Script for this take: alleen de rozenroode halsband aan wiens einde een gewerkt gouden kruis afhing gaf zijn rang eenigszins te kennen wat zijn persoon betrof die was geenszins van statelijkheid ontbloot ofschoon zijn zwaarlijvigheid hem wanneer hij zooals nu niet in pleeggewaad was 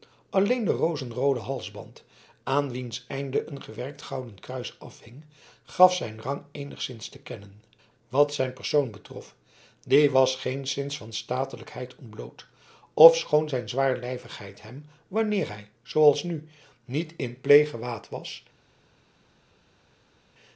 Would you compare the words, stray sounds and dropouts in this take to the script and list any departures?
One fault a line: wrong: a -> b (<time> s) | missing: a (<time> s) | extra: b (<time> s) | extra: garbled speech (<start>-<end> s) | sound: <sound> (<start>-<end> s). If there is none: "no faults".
no faults